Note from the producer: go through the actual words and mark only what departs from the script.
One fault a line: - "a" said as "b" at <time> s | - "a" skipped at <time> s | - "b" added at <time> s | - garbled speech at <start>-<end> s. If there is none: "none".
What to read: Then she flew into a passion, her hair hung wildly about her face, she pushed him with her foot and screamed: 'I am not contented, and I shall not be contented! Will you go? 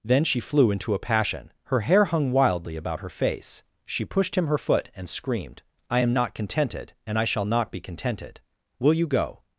- "with" skipped at 4.5 s